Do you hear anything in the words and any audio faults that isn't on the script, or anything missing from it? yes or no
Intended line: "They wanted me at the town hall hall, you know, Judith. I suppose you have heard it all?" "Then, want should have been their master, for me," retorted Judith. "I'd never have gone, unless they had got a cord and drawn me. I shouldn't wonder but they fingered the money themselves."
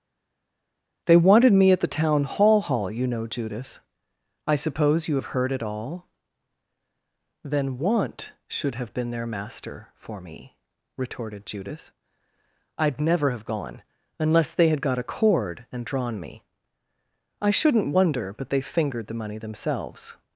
no